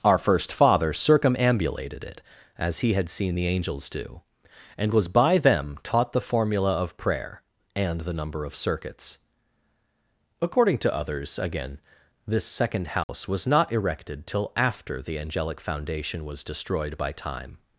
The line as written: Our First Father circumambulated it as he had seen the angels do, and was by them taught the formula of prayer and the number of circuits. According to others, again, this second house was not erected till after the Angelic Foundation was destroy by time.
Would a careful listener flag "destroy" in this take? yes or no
yes